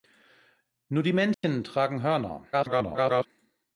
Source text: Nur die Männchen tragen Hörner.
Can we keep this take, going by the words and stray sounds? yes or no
no